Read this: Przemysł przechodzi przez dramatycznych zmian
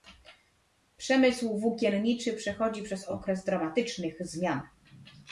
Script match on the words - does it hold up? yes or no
no